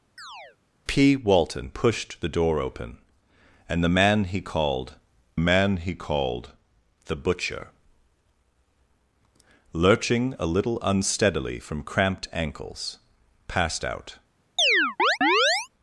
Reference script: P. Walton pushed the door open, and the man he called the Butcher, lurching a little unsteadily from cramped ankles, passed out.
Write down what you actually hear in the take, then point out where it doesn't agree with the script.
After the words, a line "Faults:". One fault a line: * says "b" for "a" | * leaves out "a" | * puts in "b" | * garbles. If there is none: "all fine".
P. Walton pushed the door open, and the man he called man he called the Butcher, lurching a little unsteadily from cramped ankles, passed out.
Faults:
* puts in "man he called"